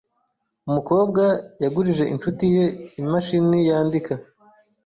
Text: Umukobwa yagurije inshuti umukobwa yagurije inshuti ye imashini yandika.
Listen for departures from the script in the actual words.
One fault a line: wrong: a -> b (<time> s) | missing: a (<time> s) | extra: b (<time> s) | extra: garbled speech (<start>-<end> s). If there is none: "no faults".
missing: umukobwa yagurije inshuti (2.5 s)